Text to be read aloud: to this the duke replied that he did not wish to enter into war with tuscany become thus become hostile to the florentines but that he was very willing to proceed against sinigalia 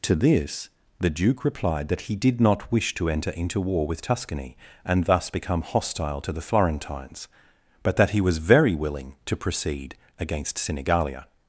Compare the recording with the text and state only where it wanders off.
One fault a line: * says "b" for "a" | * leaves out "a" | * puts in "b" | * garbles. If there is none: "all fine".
* says "and" for "become"